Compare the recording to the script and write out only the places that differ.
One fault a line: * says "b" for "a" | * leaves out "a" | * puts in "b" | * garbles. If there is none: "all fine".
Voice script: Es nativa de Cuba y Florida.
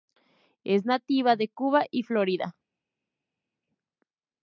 all fine